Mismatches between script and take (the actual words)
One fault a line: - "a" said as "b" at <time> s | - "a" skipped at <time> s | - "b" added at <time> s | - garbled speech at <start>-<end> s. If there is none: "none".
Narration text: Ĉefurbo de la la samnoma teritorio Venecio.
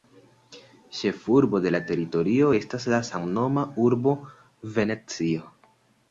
- "teritorio estas" added at 1.9 s
- "teritorio" said as "urbo" at 3.9 s